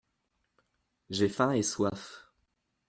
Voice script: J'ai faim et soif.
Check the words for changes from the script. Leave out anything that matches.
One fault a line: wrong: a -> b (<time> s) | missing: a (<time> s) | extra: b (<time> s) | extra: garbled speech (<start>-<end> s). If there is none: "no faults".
no faults